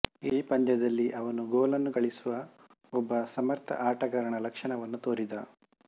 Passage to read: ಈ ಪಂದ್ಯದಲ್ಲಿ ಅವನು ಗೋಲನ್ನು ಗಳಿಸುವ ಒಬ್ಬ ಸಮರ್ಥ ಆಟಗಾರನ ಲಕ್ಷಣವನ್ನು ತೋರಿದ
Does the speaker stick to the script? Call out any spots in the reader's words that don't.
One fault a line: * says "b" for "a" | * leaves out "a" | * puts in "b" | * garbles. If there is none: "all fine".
all fine